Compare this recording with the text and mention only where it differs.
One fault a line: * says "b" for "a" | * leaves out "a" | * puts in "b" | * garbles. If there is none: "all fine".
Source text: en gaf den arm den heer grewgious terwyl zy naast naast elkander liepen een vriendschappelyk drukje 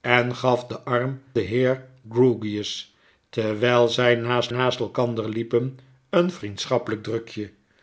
all fine